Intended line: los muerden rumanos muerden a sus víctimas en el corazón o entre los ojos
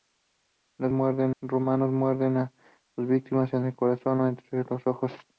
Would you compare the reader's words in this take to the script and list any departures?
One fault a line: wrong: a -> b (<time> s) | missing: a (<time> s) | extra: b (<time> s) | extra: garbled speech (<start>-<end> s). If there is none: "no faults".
no faults